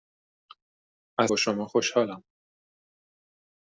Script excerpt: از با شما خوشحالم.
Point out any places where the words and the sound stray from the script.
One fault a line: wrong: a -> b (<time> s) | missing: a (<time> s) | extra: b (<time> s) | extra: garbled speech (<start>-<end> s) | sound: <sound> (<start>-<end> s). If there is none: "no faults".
no faults